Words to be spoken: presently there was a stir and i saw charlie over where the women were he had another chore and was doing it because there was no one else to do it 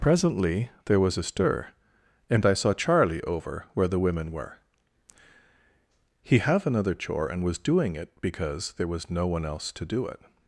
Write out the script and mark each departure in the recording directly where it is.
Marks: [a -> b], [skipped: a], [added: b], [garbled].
presently there was a stir and i saw charlie over where the women were he [had -> have] another chore and was doing it because there was no one else to do it